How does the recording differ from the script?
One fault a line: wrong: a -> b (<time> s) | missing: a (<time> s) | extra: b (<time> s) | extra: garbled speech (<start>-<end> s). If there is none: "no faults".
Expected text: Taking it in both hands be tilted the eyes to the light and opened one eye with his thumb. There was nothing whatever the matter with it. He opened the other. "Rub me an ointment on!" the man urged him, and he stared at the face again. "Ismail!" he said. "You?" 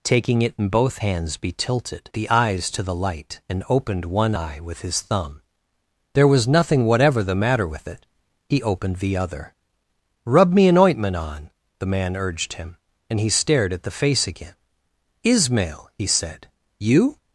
no faults